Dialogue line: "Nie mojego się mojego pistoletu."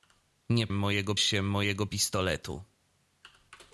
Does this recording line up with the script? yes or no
yes